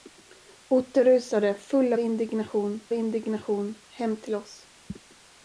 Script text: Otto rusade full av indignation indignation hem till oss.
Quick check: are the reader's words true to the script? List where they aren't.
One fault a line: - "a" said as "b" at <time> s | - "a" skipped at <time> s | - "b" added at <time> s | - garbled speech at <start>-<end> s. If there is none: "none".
none